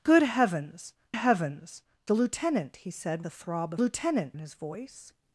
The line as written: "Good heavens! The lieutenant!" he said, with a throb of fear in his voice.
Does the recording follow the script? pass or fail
fail